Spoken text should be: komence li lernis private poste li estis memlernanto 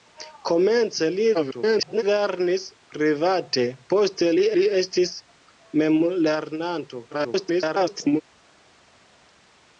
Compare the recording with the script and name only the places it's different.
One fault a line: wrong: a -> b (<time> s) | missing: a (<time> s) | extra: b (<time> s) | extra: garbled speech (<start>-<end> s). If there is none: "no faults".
extra: garbled speech (1.3-2.0 s)
extra: li (4.6 s)
extra: garbled speech (7.1-8.2 s)